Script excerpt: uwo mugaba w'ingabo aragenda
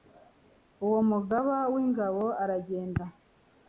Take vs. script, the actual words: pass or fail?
pass